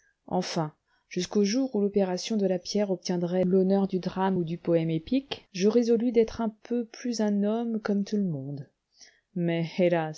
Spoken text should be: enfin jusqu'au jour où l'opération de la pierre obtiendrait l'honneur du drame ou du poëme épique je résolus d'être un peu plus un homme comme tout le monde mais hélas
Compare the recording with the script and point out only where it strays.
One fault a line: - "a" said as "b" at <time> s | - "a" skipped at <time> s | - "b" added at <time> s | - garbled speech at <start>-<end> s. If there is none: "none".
none